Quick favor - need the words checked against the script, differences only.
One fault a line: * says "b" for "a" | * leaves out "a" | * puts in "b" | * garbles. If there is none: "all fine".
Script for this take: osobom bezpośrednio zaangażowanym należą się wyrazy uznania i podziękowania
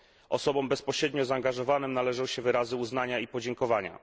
all fine